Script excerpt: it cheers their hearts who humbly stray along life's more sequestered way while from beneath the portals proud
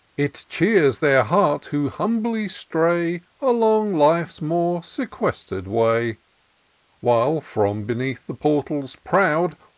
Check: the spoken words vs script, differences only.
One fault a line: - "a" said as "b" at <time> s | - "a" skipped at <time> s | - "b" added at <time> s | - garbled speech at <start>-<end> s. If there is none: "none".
none